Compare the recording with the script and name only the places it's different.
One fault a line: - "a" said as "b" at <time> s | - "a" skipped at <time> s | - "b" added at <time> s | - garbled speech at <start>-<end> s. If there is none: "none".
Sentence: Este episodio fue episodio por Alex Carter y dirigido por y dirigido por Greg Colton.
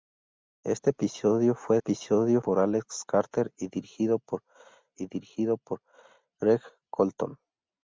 none